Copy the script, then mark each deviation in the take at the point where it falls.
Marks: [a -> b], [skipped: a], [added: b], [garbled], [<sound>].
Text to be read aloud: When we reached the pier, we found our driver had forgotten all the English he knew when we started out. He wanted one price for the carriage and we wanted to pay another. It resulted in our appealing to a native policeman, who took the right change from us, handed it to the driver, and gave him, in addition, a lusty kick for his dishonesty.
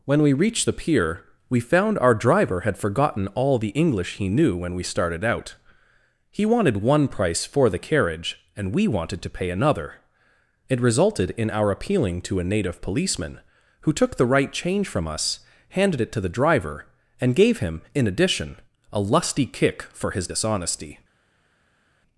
When we reached the pier, we found our driver had forgotten all the English he knew when we started out. He wanted one price for the carriage and we wanted to pay another. It resulted in our appealing to a native policeman, who took the right change from us, handed it to the driver, and gave him, in addition, a lusty kick for his dishonesty.